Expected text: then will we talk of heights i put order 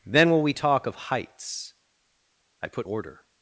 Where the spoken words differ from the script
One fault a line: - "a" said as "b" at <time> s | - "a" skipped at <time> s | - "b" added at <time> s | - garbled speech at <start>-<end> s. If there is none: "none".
none